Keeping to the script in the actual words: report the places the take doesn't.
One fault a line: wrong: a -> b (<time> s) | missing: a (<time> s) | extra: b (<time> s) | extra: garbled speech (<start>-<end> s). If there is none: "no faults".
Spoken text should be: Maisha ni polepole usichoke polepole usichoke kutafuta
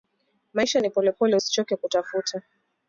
missing: polepole usichoke (1.8 s)